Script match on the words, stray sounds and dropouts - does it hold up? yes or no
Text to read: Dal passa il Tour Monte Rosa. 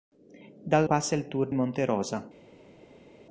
yes